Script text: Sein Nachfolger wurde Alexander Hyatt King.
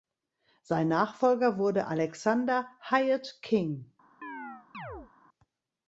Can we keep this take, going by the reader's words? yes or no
yes